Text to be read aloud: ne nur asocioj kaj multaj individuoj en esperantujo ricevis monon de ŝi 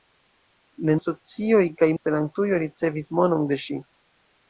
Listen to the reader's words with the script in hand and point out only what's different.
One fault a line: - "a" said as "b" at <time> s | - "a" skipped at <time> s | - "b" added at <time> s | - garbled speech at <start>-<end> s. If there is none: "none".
- "nur" skipped at 0.9 s
- "multaj individuoj en" skipped at 1.9 s